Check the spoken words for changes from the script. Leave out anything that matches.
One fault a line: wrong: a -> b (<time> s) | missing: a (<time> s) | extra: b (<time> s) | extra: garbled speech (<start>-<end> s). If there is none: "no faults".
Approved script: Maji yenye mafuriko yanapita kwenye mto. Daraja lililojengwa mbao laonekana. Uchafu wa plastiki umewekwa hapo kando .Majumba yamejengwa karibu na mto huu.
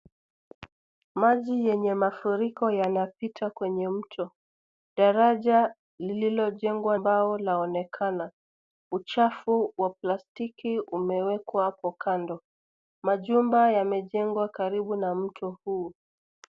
no faults